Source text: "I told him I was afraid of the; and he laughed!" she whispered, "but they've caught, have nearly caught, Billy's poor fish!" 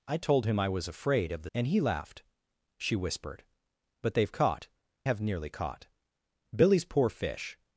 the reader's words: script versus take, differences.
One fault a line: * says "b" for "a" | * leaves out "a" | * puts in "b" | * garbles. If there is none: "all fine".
all fine